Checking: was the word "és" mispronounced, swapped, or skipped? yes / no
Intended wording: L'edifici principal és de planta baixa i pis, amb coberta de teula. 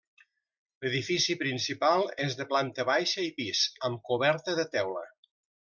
no